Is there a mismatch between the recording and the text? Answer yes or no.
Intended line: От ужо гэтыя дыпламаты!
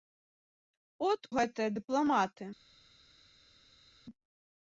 yes